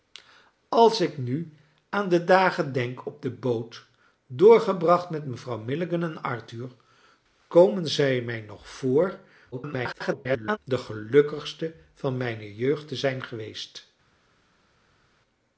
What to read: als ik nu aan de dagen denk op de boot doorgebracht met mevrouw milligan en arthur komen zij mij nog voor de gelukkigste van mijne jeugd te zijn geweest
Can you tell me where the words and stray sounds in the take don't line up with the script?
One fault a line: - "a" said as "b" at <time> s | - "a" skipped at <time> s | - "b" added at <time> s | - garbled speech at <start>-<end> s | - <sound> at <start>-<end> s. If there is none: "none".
- garbled speech at 9.5-10.6 s